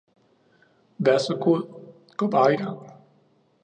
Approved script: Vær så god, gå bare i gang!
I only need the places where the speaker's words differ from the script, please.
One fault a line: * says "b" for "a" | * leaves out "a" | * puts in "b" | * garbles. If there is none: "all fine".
all fine